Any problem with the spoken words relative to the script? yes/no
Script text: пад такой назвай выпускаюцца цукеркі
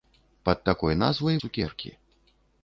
yes